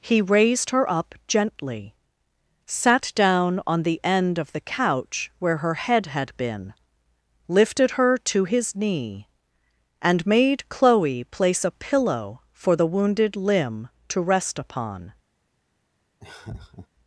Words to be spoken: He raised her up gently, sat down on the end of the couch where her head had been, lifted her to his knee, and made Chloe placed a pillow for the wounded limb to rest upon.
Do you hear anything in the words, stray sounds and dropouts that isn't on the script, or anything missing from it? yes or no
yes